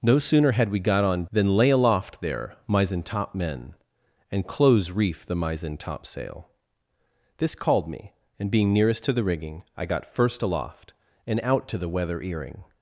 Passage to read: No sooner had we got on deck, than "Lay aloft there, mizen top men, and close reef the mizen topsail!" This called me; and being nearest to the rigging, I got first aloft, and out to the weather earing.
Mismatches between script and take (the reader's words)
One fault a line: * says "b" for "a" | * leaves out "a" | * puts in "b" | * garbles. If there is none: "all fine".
* leaves out "deck"